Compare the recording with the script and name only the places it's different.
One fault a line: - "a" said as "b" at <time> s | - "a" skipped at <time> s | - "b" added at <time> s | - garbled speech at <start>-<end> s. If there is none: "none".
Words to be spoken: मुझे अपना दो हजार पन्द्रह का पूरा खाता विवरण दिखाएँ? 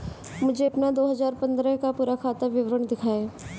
none